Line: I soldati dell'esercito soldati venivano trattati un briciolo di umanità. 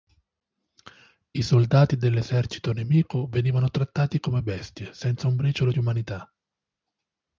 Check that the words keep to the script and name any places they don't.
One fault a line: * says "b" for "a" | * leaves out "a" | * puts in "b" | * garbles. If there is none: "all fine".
* says "nemico" for "soldati"
* puts in "come bestie senza"